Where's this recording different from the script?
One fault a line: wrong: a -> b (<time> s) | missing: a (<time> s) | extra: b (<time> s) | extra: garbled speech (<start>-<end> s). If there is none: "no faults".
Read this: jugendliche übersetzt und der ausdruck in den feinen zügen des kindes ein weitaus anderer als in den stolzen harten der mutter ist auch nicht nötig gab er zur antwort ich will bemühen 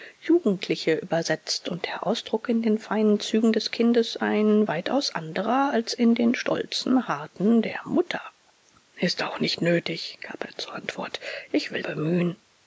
no faults